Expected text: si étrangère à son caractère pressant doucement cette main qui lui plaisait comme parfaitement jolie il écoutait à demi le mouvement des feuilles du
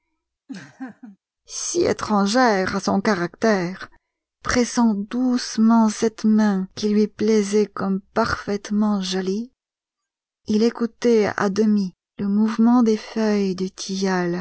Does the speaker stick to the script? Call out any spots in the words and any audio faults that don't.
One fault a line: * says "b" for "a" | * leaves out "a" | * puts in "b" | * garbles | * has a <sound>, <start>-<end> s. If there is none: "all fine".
* has a laugh, 0.5-1.2 s